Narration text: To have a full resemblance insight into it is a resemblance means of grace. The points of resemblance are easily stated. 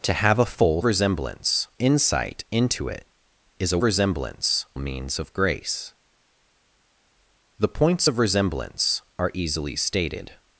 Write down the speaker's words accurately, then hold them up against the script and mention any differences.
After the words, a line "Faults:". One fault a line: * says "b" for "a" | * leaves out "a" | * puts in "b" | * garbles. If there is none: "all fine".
To have a full resemblance insight into it is a resemblance means of grace. The points of resemblance are easily stated.
Faults:
all fine